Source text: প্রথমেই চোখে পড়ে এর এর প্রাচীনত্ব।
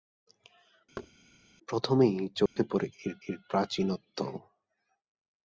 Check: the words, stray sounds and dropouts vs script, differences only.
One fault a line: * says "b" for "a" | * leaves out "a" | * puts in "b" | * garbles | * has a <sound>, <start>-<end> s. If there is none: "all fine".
* has a thud, 1.0-1.1 s
* has a dropout, 2.5-2.6 s